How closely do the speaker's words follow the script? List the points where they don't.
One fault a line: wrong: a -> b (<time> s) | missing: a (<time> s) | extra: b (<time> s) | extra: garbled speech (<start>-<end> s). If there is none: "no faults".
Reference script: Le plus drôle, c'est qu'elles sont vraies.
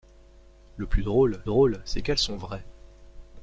extra: drôle (1.4 s)